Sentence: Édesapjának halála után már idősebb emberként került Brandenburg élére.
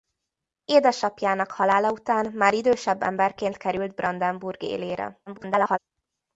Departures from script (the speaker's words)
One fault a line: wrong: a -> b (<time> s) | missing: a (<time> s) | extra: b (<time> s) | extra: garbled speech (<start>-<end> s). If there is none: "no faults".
extra: garbled speech (5.3-5.8 s)